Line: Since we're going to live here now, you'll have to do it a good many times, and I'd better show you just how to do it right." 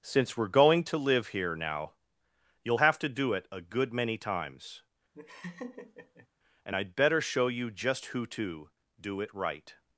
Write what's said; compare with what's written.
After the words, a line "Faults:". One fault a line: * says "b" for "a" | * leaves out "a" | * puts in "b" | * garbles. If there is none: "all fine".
Since we're going to live here now, you'll have to do it a good many times, and I'd better show you just who to do it right."
Faults:
* says "who" for "how"